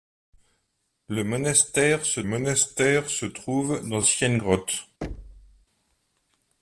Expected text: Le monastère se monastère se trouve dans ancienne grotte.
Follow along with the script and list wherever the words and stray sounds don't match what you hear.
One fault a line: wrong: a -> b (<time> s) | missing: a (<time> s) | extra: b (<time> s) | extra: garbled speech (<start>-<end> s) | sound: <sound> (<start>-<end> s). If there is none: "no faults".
sound: thud (5.0-5.7 s)